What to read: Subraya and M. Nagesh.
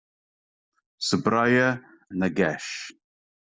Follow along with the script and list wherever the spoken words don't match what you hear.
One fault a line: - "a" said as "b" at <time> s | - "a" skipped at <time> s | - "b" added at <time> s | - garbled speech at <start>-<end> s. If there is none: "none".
- "and M" skipped at 1.8 s